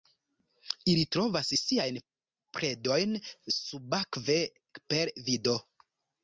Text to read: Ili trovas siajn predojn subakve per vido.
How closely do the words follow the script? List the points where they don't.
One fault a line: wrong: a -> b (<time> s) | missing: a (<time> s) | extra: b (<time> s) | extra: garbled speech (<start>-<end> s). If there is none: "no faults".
no faults